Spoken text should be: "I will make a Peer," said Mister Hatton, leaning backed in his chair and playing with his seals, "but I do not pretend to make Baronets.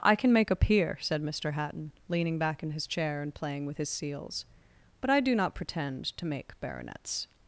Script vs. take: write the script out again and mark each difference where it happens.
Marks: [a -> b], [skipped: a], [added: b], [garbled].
"I [will -> can] make a Peer," said Mister Hatton, leaning [backed -> back] in his chair and playing with his seals, "but I do not pretend to make Baronets.